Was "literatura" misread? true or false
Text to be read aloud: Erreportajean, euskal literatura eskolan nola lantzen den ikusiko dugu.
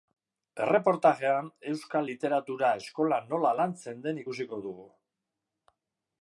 false